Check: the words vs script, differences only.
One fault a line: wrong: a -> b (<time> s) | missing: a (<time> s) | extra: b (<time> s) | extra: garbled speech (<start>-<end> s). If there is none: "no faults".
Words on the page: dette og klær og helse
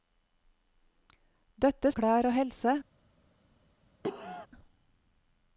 no faults